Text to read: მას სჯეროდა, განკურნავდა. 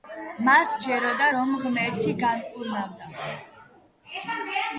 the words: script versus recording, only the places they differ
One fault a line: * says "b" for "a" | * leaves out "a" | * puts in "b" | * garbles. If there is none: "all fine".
* puts in "რომ ღმერთი"